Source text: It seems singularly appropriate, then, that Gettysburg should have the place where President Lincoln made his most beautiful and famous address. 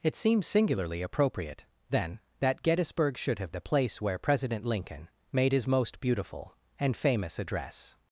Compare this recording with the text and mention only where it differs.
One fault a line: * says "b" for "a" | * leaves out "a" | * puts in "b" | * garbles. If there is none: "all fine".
all fine